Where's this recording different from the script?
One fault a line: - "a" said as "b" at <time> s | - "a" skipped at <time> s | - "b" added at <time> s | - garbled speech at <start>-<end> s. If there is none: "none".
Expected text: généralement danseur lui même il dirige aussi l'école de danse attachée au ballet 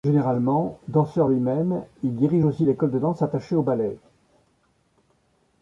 none